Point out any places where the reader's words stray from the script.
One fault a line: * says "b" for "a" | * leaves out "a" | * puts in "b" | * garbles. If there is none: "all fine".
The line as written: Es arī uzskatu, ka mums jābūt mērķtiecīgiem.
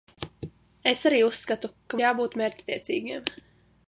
* leaves out "mums"